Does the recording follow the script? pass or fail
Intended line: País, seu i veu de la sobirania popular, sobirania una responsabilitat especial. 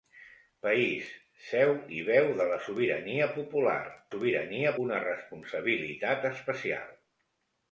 pass